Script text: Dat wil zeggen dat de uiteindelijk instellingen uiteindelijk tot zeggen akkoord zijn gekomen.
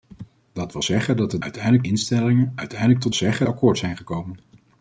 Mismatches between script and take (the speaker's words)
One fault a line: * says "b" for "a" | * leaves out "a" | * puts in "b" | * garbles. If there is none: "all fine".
all fine